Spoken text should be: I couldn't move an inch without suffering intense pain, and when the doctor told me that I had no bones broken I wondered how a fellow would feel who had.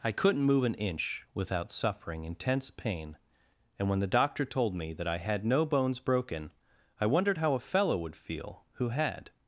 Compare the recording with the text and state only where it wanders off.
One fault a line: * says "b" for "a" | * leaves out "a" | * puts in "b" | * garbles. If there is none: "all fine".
all fine